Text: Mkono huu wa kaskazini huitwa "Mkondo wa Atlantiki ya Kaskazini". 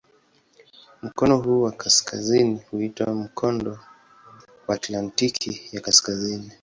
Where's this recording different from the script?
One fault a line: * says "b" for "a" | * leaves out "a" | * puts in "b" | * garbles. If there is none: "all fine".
all fine